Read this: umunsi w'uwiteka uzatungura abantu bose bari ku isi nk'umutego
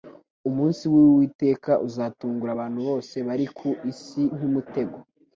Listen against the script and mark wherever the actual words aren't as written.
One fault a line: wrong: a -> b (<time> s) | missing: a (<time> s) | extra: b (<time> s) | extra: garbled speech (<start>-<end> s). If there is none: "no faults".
no faults